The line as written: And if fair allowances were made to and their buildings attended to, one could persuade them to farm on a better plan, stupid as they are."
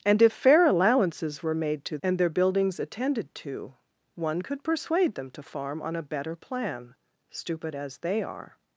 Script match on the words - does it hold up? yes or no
yes